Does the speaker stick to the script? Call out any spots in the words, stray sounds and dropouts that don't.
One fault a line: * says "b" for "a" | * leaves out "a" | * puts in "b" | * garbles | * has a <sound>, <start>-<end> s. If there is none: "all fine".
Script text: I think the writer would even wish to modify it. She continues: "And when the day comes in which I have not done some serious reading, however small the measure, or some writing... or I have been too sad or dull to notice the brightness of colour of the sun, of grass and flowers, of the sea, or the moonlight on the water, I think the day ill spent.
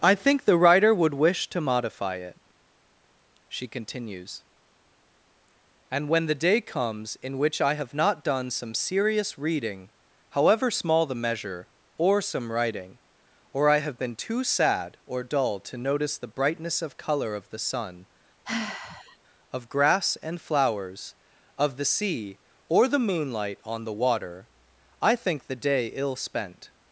* leaves out "even"
* has a sigh, 18.4-19.2 s